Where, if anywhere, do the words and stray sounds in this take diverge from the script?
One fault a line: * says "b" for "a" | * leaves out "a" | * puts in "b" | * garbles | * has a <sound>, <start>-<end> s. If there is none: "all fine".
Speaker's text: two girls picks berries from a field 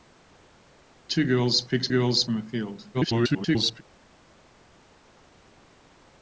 * says "girls" for "berries"
* garbles